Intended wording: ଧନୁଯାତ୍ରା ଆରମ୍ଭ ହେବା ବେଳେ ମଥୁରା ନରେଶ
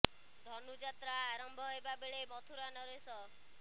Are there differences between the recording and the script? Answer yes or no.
no